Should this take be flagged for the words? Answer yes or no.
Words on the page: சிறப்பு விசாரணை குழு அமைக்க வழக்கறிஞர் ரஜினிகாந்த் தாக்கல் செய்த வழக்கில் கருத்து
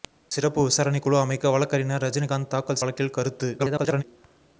yes